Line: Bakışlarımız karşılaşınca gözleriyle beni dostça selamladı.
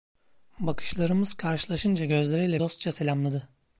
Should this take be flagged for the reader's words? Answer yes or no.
yes